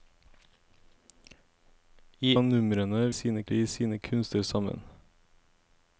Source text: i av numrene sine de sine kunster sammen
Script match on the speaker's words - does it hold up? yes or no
yes